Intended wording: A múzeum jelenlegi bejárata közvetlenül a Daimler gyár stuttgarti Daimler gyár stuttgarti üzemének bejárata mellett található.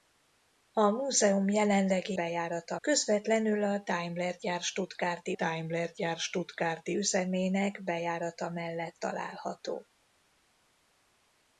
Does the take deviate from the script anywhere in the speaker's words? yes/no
no